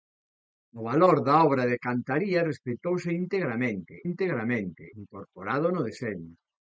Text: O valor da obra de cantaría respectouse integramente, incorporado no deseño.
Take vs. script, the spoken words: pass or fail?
fail